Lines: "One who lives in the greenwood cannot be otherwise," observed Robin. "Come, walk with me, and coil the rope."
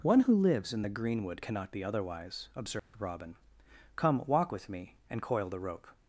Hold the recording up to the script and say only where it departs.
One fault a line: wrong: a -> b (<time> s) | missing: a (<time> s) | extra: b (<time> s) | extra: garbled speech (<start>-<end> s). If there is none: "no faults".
no faults